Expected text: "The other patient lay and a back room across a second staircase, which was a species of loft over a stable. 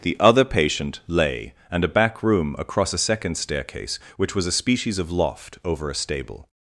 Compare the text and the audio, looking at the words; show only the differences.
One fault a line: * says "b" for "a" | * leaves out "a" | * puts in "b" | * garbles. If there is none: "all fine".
all fine